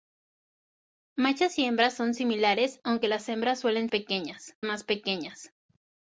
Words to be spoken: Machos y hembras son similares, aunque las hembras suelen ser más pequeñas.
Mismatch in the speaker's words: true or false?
true